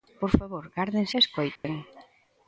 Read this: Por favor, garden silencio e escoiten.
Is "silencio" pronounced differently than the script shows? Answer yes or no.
yes